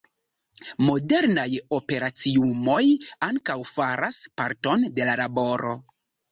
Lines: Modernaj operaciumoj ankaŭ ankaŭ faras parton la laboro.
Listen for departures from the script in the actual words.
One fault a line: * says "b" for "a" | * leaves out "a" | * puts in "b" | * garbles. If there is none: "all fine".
* leaves out "ankaŭ"
* puts in "de"